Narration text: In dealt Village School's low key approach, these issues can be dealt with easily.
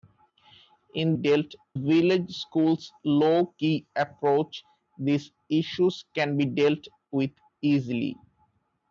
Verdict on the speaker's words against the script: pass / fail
pass